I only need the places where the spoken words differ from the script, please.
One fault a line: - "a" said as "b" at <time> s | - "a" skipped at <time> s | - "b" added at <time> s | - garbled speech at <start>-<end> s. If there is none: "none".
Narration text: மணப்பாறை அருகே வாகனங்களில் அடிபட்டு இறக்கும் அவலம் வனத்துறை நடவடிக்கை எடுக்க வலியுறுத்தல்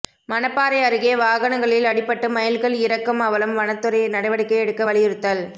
- "மயில்கள்" added at 2.3 s